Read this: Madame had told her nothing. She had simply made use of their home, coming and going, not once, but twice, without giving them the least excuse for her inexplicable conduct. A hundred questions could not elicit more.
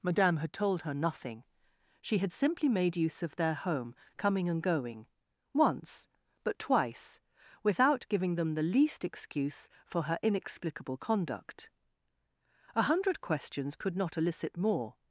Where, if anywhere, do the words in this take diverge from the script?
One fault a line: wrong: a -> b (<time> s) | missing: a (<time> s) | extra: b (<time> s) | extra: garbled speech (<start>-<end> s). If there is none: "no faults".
missing: not (5.1 s)